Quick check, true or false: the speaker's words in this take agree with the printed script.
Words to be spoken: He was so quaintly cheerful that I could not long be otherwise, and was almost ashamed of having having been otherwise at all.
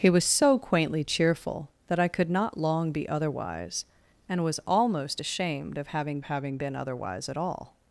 true